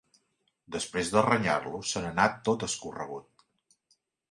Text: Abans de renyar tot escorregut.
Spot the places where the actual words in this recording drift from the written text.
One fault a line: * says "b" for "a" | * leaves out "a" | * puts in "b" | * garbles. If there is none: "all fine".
* says "Després" for "Abans"
* puts in "lo se n'anà"